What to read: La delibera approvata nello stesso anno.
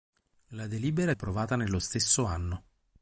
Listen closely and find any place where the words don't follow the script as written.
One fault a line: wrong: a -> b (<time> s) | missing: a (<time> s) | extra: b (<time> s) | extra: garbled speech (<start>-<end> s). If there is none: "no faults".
no faults